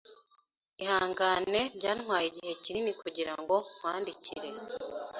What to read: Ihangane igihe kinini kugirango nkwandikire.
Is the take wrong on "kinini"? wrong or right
right